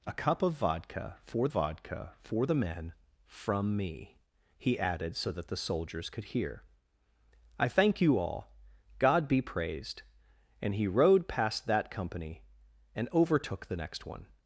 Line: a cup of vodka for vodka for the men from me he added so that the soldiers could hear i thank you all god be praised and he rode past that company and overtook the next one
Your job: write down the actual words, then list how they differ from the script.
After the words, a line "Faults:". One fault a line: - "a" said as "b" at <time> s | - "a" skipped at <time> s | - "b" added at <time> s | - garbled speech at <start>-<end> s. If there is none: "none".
a cup of vodka for vodka for the men from me he added so that the soldiers could hear i thank you all god be praised and he rode past that company and overtook the next one
Faults:
none